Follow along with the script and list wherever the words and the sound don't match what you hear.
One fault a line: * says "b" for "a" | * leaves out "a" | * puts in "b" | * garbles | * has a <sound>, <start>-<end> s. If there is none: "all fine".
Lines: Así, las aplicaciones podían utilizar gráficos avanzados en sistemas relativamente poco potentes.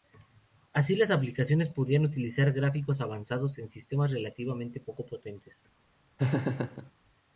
* has a laugh, 6.2-6.9 s